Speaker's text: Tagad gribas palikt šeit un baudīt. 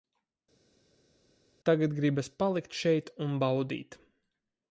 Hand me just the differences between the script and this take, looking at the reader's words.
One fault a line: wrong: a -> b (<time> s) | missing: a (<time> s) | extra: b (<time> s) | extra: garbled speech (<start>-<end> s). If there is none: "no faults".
no faults